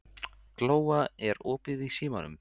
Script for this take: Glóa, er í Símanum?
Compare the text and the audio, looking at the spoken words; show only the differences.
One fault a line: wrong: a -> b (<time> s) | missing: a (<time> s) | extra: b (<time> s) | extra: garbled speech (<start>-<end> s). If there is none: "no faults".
extra: opið (1.6 s)